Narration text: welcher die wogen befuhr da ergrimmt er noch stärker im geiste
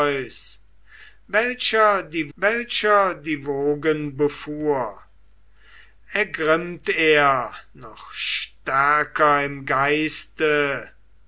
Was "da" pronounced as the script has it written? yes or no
no